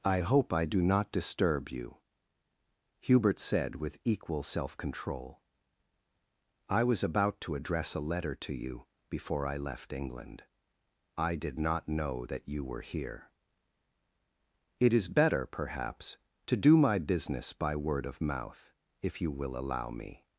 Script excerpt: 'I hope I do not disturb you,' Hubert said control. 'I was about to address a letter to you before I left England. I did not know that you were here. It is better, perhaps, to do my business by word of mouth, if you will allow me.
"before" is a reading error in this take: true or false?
false